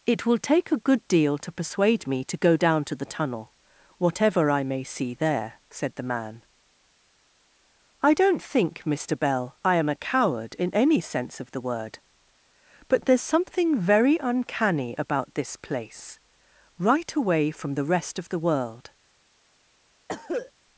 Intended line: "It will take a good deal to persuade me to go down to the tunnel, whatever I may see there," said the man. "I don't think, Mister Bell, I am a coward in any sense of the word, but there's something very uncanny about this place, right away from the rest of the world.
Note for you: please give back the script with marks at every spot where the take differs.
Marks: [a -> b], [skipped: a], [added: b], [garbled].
"It will take a good deal to persuade me to go down to the tunnel, whatever I may see there," said the man. "I don't think, Mister Bell, I am a coward in any sense of the word, but there's something very uncanny about this place, right away from the rest of the world.